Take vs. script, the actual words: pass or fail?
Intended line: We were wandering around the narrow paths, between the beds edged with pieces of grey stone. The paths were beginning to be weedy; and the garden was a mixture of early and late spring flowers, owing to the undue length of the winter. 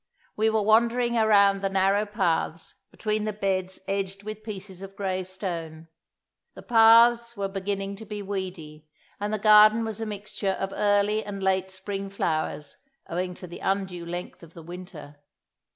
pass